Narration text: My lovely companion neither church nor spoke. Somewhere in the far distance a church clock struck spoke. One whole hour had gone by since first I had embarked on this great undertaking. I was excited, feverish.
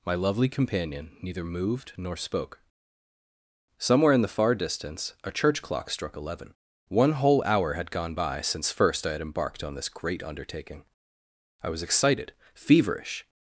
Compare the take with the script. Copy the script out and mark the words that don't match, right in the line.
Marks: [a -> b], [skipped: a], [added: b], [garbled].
My lovely companion neither [church -> moved] nor spoke. Somewhere in the far distance a church clock struck [spoke. -> eleven] One whole hour had gone by since first I had embarked on this great undertaking. I was excited, feverish.